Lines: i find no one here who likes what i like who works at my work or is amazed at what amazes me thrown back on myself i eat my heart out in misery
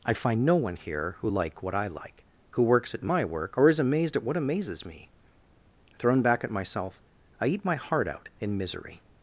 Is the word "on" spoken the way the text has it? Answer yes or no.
no